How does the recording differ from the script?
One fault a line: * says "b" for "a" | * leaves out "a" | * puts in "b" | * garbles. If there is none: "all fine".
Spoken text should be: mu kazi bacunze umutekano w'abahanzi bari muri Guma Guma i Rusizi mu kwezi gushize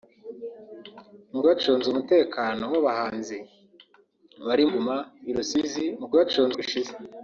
* leaves out "kazi"
* leaves out "muri"
* leaves out "Guma"
* says "bacunze" for "kwezi"